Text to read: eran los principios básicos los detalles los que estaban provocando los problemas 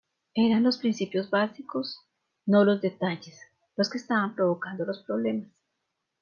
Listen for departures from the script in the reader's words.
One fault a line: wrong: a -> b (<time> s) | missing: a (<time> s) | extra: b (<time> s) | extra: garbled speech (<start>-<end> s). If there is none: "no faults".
extra: no (2.4 s)